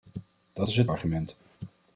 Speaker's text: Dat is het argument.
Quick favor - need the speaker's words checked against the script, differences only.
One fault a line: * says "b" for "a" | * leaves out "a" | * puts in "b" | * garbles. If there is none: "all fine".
all fine